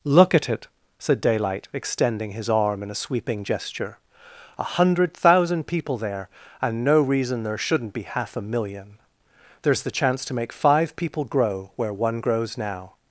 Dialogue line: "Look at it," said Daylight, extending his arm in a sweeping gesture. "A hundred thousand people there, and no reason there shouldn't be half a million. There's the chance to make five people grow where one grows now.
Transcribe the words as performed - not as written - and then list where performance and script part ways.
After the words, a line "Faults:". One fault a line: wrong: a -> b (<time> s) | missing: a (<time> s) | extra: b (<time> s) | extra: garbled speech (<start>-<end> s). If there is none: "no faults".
"Look at it," said Daylight, extending his arm in a sweeping gesture. "A hundred thousand people there, and no reason there shouldn't be half a million. There's the chance to make five people grow where one grows now.
Faults:
no faults